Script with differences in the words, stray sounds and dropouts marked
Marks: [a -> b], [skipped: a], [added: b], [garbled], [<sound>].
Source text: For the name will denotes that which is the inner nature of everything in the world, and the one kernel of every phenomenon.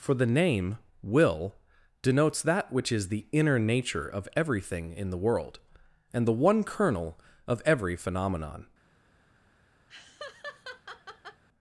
For the name will denotes that which is the inner nature of everything in the world, and the one kernel of every phenomenon. [laugh]